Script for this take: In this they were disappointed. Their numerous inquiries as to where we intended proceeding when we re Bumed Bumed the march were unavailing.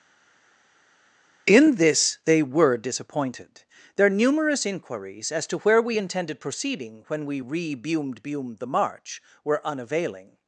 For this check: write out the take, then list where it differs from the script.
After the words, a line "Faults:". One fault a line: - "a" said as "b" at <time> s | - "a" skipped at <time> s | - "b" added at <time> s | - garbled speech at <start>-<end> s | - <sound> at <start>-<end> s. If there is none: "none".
In this they were disappointed. Their numerous inquiries as to where we intended proceeding when we re Bumed Bumed the march were unavailing.
Faults:
none